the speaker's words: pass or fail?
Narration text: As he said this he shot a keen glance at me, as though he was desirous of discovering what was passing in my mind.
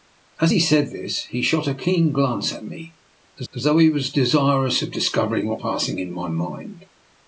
fail